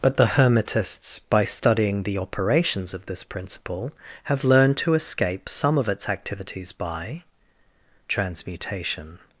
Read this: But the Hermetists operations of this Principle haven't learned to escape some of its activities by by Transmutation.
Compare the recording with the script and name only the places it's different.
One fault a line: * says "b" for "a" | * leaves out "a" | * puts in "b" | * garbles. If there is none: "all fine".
* puts in "by studying the"
* says "have" for "haven't"
* leaves out "by"